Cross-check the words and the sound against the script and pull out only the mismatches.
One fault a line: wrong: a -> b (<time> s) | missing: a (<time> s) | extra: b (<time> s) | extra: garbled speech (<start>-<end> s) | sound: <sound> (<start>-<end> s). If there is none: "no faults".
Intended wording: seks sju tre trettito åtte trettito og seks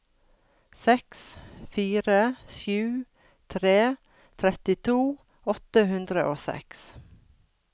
extra: fire (1.7 s)
wrong: trettito -> hundre (5.9 s)